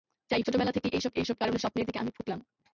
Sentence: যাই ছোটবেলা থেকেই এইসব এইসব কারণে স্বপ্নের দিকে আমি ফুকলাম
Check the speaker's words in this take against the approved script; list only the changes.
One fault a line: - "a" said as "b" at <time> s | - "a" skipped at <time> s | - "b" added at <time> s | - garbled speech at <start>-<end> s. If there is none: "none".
none